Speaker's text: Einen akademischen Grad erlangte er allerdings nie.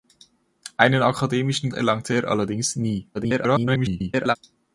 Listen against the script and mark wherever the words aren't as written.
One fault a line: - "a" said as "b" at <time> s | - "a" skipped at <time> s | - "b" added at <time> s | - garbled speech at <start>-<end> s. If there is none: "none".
- "Grad" skipped at 1.7 s
- garbled speech at 3.1-4.4 s